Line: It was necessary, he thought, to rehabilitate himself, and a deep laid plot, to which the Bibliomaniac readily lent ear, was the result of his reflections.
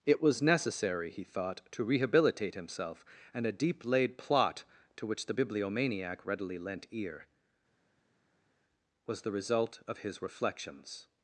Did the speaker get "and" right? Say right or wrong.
right